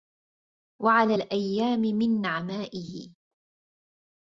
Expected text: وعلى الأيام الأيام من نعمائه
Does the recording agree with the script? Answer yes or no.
no